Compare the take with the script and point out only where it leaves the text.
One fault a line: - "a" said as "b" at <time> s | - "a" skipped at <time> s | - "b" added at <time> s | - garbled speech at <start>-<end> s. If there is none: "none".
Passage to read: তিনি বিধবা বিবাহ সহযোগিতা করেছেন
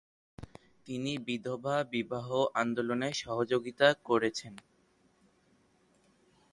- "আন্দোলনে" added at 2.5 s